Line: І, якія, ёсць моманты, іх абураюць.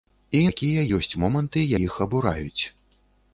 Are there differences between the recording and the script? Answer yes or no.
no